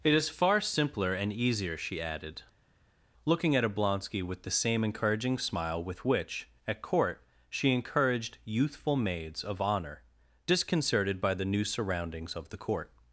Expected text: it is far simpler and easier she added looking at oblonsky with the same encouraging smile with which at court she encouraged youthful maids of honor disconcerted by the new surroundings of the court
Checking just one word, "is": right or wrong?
right